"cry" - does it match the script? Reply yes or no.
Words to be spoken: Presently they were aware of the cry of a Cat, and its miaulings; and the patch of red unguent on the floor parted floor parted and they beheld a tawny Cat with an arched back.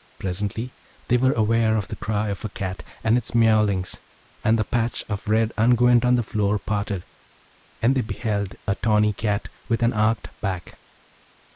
yes